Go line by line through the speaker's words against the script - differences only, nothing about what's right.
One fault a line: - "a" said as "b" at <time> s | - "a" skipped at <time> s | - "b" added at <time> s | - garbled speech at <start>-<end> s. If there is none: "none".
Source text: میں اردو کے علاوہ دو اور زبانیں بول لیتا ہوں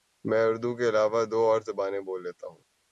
none